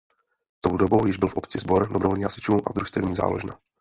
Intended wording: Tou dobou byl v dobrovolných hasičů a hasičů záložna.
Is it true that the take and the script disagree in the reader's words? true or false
true